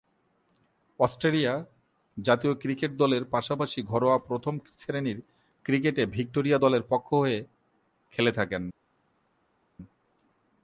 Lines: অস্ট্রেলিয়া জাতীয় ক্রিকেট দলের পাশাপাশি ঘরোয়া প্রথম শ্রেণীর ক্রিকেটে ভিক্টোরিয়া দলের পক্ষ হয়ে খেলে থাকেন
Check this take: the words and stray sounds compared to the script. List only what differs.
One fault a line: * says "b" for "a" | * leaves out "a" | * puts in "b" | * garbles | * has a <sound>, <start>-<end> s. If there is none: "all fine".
all fine